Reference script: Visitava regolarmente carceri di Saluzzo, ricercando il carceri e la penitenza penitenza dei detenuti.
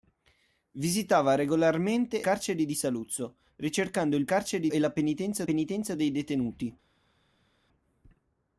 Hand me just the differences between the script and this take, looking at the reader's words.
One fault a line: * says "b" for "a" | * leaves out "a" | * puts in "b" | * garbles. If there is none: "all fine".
all fine